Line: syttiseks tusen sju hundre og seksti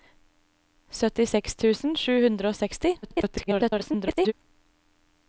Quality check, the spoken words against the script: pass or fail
fail